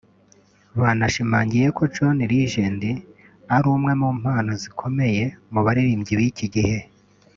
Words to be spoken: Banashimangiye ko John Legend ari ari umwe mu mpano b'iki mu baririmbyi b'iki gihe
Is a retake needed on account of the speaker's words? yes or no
yes